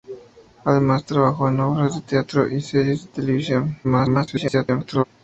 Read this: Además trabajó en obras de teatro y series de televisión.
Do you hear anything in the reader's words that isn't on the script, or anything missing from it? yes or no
yes